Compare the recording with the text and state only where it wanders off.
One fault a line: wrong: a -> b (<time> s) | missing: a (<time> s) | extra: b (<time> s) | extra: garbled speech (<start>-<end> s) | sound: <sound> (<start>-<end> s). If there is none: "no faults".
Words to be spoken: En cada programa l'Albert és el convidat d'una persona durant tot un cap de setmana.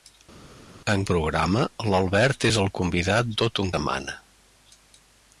missing: cada (1.0 s)
missing: d'una persona durant (3.3 s)
missing: cap de (3.7 s)